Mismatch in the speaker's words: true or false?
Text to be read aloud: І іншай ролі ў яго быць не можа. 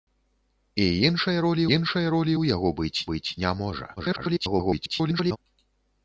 true